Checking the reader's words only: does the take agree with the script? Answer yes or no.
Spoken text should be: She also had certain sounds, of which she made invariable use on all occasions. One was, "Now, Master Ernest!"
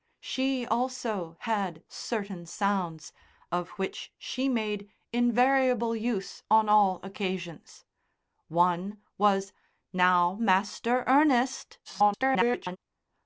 no